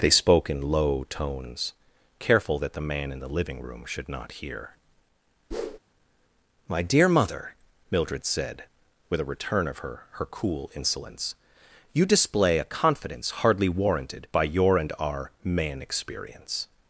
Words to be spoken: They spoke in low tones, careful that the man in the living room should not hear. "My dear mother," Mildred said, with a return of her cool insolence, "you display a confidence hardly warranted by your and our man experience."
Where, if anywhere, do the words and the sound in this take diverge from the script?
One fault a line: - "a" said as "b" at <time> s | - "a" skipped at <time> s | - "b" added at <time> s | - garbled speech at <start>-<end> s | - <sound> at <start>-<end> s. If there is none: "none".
- whoosh at 5.5-5.8 s
- "her" added at 10.1 s